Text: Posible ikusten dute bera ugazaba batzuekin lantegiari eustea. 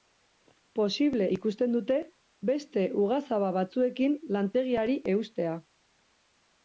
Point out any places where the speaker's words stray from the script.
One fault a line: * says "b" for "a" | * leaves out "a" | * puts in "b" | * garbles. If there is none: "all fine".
* says "beste" for "bera"